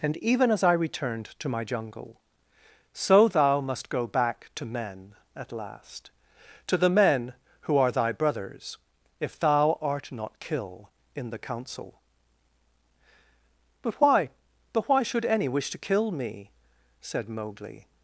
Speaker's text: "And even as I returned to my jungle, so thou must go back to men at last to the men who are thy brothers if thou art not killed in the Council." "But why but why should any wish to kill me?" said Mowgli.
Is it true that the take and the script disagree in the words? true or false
true